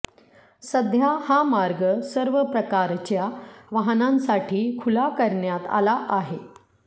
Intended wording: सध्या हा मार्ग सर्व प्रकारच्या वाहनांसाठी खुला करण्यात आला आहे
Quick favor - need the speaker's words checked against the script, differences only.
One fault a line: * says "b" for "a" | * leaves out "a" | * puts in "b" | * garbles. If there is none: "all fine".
all fine